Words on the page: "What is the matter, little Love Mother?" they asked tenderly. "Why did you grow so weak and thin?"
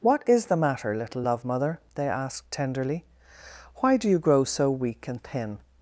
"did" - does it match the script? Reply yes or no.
no